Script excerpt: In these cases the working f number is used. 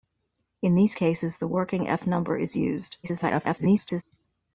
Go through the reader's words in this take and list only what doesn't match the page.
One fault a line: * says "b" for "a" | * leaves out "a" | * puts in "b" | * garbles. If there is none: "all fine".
* garbles